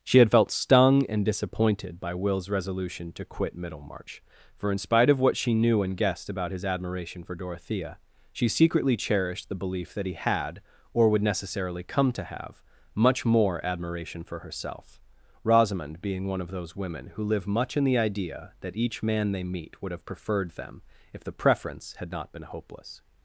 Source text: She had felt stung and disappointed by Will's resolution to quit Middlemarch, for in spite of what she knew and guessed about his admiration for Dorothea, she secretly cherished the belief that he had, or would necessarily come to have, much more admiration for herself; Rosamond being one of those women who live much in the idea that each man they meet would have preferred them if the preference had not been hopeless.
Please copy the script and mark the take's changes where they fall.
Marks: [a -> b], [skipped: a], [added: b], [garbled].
She had felt stung and disappointed by Will's resolution to quit Middlemarch, for in spite of what she knew and guessed about his admiration for Dorothea, she secretly cherished the belief that he had, or would necessarily come to have, much more admiration for herself; Rosamond being one of those women who live much in the idea that each man they meet would have preferred them if the preference had not been hopeless.